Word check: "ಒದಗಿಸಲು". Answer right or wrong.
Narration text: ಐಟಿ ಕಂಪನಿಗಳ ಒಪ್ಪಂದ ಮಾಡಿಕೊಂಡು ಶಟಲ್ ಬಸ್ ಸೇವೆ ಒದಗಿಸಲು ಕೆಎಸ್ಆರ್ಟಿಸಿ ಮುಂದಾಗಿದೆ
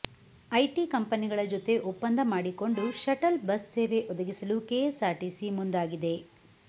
right